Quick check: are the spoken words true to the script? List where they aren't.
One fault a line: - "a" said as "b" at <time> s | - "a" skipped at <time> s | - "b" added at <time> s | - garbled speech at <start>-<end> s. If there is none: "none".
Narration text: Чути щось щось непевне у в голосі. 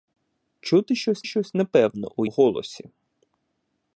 none